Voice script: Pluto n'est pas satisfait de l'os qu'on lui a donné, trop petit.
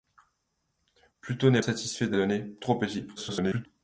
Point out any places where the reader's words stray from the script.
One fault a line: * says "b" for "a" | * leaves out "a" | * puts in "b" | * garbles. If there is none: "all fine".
* leaves out "pas"
* leaves out "l'os qu'on lui"
* garbles